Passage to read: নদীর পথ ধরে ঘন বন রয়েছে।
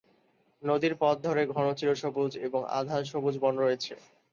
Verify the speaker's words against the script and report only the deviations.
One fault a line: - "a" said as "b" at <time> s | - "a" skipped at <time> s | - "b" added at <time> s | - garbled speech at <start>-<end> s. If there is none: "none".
- "চিরসবুজ এবং আধা-সবুজ" added at 1.8 s